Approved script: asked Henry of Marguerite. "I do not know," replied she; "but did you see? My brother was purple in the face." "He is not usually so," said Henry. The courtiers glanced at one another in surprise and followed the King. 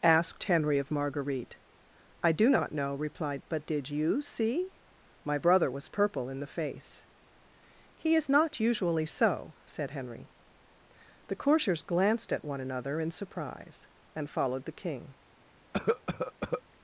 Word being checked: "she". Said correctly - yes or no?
no